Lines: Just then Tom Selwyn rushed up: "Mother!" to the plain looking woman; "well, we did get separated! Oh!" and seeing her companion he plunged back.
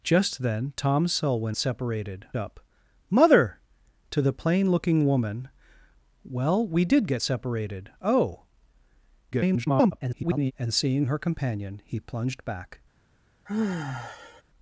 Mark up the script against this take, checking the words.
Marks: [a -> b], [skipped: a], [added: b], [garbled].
Just then Tom Selwyn [rushed -> separated] up: "Mother!" to the plain looking woman; "well, we did get separated! Oh!" [garbled] and seeing her companion he plunged back.